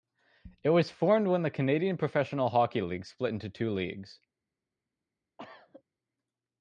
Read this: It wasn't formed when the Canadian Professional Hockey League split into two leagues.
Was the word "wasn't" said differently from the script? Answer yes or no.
yes